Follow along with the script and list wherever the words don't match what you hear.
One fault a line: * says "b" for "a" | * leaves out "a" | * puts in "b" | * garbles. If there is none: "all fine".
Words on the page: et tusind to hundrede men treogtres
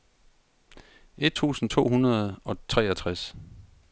* says "og" for "men"